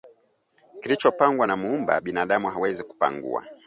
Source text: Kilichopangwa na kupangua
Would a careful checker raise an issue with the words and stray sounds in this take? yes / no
yes